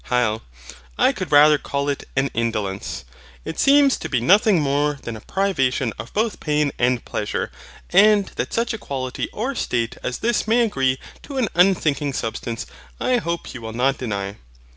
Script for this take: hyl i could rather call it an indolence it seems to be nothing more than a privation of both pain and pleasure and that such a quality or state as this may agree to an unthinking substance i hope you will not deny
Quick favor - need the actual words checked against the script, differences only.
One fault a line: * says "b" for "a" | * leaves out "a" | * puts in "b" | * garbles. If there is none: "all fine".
all fine